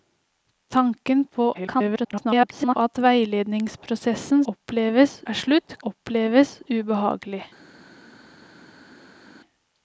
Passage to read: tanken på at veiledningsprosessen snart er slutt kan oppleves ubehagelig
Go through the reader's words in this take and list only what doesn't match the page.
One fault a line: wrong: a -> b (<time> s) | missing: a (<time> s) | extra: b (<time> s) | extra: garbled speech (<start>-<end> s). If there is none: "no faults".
extra: garbled speech (1.5-2.8 s)
wrong: snart -> oppleves (4.5 s)
missing: kan (5.8 s)